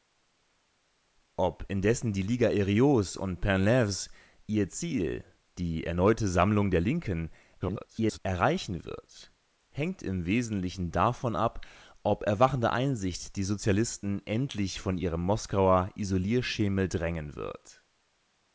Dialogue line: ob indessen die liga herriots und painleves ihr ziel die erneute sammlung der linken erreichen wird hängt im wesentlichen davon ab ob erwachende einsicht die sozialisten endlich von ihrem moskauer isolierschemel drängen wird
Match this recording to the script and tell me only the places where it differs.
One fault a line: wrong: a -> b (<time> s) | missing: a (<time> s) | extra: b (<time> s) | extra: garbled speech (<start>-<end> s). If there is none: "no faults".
extra: garbled speech (7.6-8.2 s)